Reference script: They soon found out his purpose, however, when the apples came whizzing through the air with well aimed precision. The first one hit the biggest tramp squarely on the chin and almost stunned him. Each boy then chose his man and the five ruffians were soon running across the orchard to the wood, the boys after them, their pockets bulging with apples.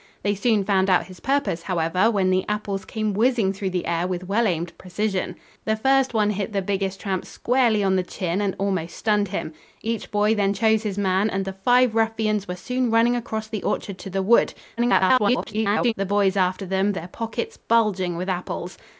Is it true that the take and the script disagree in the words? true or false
true